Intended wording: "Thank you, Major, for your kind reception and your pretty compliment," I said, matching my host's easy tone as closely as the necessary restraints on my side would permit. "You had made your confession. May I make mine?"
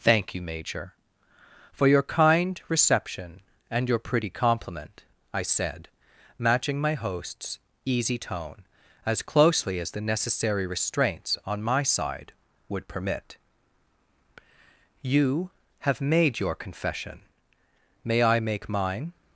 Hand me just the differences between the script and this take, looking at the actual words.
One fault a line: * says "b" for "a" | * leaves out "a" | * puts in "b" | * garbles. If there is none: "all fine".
* says "have" for "had"